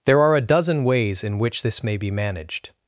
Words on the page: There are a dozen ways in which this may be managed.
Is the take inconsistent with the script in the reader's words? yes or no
no